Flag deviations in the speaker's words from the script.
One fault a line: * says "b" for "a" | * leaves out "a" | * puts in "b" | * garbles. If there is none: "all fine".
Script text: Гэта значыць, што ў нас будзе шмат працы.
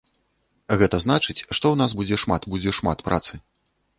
* puts in "будзе шмат"